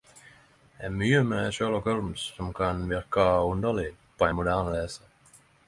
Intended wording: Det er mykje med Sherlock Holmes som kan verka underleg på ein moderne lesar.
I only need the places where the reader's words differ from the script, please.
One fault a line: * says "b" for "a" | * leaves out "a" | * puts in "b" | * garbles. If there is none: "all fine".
all fine